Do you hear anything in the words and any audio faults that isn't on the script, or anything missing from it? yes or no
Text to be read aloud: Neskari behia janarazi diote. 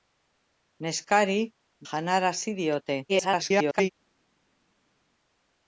yes